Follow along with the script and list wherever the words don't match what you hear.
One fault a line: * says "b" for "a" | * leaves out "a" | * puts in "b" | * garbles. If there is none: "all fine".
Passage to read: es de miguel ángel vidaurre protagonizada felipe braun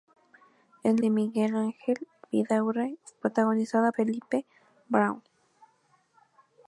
all fine